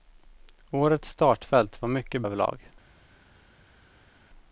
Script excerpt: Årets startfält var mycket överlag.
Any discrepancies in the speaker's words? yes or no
no